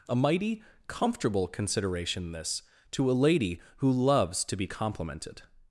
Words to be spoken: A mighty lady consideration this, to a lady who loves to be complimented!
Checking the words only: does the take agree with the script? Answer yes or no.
no